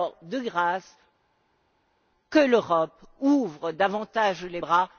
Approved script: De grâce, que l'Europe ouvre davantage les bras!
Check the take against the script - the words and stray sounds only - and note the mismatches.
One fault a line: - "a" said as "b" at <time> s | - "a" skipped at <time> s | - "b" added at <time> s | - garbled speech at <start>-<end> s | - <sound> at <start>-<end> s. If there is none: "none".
none